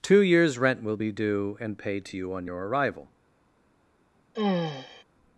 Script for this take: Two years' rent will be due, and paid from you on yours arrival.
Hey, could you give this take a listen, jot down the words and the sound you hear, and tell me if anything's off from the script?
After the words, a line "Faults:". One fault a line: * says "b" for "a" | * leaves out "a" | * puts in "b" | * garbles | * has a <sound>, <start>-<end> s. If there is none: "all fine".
Two years' rent will be due, and paid to you on your arrival.
Faults:
* says "to" for "from"
* says "your" for "yours"
* has a sigh, 4.3-5.0 s